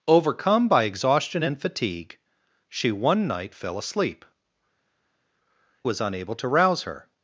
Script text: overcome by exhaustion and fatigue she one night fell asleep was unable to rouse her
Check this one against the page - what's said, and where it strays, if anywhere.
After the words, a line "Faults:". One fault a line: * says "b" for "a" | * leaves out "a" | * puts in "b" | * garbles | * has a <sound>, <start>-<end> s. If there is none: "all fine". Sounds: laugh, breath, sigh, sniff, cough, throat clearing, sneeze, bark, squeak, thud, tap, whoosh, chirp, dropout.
overcome by exhaustion and fatigue she one night fell asleep was unable to rouse her
Faults:
all fine